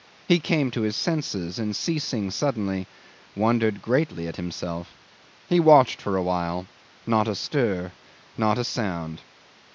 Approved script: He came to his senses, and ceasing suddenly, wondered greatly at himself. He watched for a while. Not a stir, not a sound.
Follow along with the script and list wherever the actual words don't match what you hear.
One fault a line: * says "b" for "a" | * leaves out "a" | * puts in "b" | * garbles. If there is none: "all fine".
all fine